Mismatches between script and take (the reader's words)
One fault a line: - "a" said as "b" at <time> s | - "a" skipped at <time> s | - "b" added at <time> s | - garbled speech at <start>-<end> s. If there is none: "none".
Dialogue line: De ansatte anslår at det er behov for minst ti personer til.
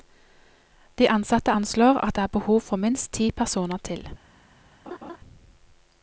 none